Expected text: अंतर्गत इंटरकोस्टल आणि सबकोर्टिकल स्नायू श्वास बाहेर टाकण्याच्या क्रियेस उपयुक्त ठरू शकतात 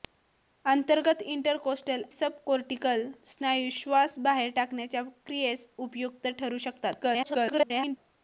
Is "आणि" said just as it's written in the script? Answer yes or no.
no